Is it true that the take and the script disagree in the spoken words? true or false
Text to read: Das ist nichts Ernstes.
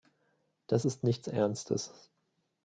false